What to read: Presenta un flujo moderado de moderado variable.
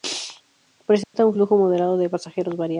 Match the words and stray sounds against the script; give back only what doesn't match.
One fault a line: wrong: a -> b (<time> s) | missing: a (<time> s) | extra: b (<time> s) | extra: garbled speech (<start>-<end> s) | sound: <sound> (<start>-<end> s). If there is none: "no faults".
sound: dropout (1.0-1.1 s)
wrong: moderado -> pasajeros (2.1 s)